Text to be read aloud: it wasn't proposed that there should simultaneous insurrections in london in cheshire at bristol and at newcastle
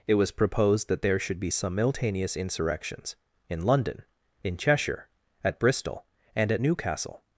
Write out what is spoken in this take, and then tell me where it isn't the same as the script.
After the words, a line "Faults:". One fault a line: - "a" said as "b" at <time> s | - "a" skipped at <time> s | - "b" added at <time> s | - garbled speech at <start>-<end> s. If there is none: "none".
it was proposed that there should be simultaneous insurrections in london in cheshire at bristol and at newcastle
Faults:
- "wasn't" said as "was" at 0.1 s
- "be" added at 1.4 s